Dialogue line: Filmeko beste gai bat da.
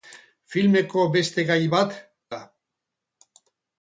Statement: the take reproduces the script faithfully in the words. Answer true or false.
true